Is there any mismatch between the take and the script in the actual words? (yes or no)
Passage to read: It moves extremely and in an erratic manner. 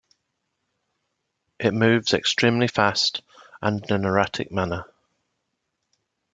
yes